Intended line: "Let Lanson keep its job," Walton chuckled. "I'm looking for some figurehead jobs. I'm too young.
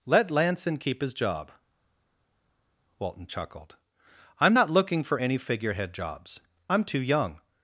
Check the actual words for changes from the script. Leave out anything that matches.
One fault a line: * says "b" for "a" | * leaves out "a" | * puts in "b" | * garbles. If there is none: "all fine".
* says "his" for "its"
* puts in "not"
* says "any" for "some"